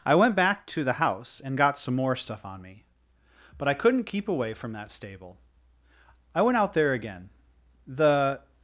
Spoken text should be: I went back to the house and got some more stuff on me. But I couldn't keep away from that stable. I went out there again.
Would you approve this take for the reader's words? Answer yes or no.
no